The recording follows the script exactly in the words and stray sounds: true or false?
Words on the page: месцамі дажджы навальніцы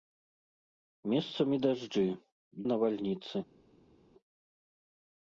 true